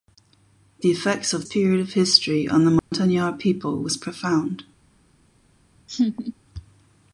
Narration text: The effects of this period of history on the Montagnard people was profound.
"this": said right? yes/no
no